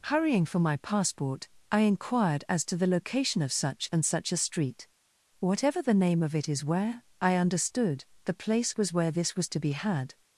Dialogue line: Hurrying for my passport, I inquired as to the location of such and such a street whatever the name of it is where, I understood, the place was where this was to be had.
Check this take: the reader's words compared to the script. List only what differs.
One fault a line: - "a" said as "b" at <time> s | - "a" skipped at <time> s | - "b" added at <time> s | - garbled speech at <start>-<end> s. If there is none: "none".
none